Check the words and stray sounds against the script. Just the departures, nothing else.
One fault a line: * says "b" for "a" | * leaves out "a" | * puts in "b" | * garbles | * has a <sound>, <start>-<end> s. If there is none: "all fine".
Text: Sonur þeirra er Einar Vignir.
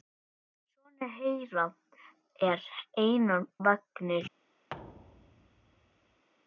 * has a thud, 4.7-6.2 s